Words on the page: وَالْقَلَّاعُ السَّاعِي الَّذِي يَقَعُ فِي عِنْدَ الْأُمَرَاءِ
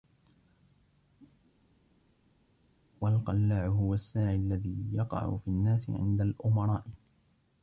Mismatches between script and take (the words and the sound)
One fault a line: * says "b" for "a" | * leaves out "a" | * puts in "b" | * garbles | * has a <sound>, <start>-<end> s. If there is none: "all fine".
* puts in "هُوَ"
* puts in "النَّاسِ"